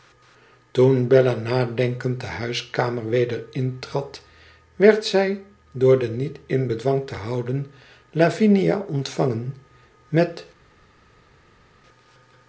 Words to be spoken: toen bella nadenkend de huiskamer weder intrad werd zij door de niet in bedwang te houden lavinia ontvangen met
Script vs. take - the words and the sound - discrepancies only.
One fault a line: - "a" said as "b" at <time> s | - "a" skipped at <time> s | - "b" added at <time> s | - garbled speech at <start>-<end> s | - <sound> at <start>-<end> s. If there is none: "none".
none